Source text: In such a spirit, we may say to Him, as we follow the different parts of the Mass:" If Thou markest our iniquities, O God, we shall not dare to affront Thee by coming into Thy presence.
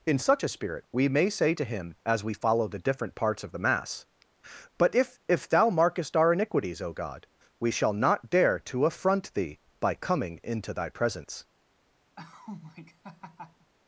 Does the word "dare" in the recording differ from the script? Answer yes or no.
no